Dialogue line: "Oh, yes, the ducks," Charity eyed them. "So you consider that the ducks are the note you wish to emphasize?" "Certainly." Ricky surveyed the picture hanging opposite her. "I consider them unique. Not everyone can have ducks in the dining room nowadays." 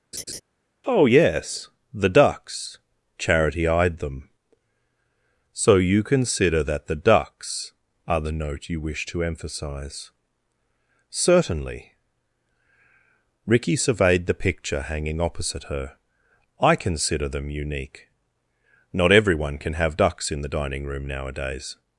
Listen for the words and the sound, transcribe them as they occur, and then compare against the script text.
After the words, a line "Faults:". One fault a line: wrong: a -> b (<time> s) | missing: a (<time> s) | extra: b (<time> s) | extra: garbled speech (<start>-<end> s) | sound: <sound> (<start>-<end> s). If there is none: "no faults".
"Oh, yes, the ducks," Charity eyed them. "So you consider that the ducks are the note you wish to emphasize?" "Certainly." Ricky surveyed the picture hanging opposite her. "I consider them unique. Not everyone can have ducks in the dining room nowadays."
Faults:
sound: laugh (0.1-0.4 s)